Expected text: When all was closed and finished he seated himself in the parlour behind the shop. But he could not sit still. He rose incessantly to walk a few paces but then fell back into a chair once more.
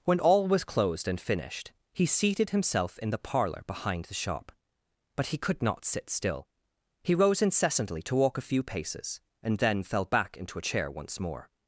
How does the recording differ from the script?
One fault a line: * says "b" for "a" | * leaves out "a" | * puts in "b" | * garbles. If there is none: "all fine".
* says "and" for "but"